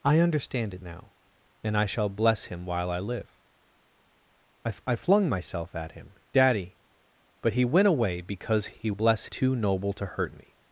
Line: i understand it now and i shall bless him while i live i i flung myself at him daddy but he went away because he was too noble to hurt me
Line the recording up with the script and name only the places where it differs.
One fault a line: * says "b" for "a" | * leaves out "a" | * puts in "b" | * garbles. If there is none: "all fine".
* says "bless" for "was"